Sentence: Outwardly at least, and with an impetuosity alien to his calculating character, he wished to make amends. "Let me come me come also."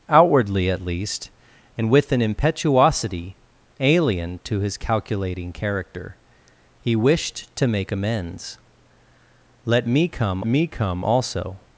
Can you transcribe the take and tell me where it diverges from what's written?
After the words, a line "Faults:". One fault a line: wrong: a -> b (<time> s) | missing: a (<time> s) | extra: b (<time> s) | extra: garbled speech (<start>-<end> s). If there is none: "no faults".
Outwardly at least, and with an impetuosity alien to his calculating character, he wished to make amends. "Let me come me come also."
Faults:
no faults